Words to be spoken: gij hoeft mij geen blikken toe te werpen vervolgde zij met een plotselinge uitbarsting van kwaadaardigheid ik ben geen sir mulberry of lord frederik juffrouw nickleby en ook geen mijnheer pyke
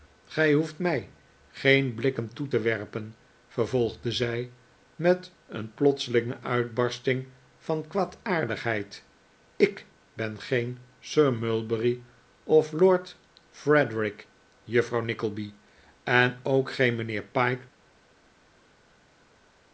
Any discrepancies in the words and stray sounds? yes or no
no